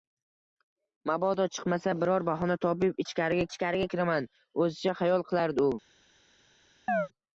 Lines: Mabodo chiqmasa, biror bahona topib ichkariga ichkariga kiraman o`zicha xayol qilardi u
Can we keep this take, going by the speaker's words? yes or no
yes